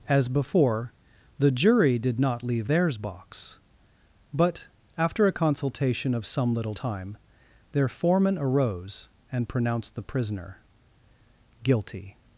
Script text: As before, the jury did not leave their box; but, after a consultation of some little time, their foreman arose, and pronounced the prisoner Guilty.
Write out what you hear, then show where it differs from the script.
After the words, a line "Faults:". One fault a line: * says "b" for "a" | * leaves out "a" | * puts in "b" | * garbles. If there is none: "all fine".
As before, the jury did not leave theirs box; but, after a consultation of some little time, their foreman arose, and pronounced the prisoner Guilty.
Faults:
* says "theirs" for "their"